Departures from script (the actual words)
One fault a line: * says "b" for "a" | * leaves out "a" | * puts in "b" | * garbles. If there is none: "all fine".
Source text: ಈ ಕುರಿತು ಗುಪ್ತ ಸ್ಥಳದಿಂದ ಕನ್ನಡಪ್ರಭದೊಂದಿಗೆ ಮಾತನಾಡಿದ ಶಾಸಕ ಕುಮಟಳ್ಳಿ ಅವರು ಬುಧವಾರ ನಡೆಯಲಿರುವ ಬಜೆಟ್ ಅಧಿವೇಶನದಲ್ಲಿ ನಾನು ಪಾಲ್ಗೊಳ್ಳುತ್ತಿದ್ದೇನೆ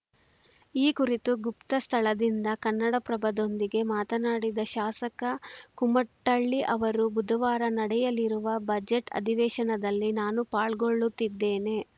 all fine